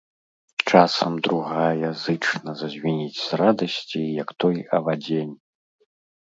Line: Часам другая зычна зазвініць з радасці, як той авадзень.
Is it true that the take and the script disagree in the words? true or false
false